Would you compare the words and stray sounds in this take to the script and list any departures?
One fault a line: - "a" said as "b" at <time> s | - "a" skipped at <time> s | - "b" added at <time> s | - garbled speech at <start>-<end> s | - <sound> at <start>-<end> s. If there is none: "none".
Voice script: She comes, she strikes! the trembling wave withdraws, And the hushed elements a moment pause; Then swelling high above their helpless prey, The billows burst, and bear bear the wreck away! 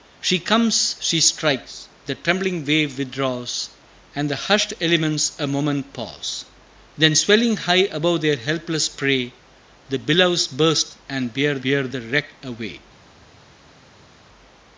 none